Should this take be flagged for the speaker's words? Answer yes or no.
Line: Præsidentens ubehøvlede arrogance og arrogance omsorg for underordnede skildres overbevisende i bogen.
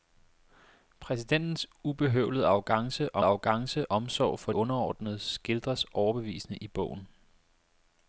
no